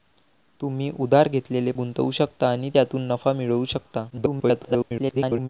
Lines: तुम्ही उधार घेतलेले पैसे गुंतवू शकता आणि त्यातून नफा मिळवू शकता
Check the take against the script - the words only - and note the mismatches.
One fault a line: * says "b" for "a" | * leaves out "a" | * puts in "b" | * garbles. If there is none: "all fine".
* leaves out "पैसे"
* garbles